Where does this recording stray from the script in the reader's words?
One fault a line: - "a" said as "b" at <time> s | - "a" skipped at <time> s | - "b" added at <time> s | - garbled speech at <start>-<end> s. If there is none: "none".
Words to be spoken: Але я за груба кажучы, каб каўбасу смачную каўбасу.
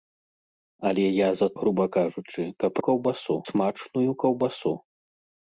none